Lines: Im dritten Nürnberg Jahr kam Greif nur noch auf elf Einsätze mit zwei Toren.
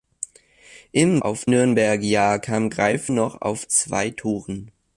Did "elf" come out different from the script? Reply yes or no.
yes